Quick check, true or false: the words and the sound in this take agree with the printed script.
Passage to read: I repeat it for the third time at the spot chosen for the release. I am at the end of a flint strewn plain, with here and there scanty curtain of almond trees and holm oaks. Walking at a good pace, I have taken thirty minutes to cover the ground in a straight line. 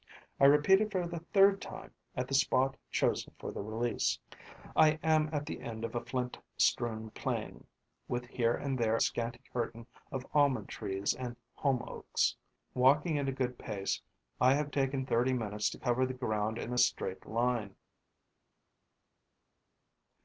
true